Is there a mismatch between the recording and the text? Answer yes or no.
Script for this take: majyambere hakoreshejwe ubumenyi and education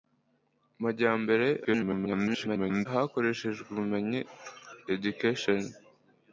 yes